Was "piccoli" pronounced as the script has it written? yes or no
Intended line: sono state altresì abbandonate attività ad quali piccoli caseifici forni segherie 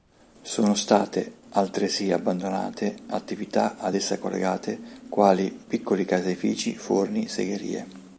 yes